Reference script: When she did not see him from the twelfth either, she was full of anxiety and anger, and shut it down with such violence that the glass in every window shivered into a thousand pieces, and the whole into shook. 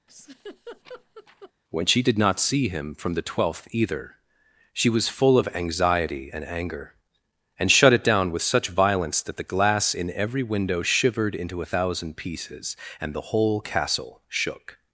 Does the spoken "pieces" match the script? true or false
true